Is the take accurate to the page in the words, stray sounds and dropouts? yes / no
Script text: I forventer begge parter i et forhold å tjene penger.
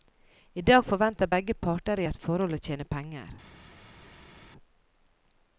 no